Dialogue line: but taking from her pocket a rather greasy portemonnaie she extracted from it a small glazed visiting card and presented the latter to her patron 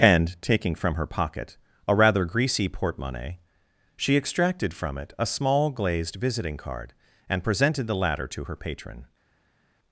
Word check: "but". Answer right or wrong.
wrong